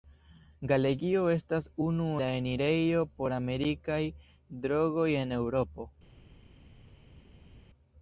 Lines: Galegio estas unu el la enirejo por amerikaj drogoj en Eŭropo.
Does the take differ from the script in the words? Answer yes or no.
yes